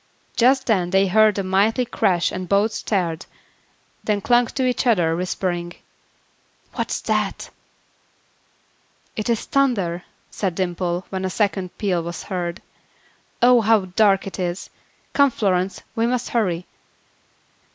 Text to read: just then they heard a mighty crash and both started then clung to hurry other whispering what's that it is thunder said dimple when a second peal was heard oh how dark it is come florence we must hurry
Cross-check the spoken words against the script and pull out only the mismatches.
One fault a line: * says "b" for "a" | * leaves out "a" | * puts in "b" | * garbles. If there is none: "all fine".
* says "each" for "hurry"